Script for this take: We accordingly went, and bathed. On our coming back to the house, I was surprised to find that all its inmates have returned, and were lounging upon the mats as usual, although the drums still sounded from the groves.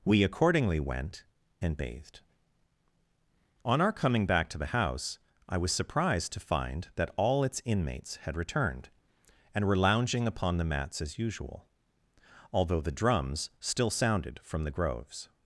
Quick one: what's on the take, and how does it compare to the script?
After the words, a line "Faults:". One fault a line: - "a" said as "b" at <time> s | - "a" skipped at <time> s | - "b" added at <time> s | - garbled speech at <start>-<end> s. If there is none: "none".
We accordingly went, and bathed. On our coming back to the house, I was surprised to find that all its inmates had returned, and were lounging upon the mats as usual, although the drums still sounded from the groves.
Faults:
- "have" said as "had" at 8.2 s